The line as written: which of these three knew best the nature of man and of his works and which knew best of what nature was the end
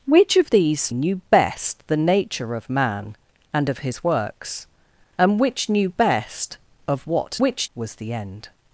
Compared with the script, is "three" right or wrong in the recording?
wrong